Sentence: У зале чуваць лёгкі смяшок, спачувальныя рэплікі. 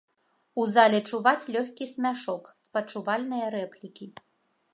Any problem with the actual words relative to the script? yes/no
no